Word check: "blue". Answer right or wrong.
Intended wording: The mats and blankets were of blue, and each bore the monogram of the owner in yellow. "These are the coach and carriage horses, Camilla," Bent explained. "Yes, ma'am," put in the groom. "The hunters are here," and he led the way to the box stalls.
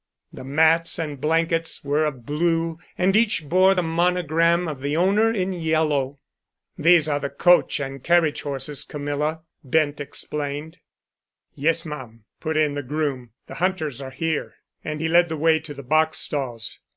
right